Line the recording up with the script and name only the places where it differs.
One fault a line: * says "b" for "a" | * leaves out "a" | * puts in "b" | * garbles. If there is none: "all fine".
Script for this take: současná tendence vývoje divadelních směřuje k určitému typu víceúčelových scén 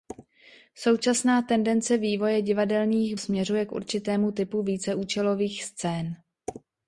all fine